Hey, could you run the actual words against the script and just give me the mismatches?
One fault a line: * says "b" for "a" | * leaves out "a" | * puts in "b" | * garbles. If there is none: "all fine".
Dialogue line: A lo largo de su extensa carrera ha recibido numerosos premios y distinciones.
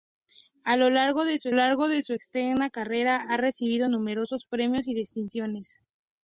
* puts in "largo de su"